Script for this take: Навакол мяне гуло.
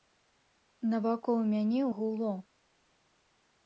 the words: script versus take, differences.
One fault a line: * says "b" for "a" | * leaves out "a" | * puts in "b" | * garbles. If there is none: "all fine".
all fine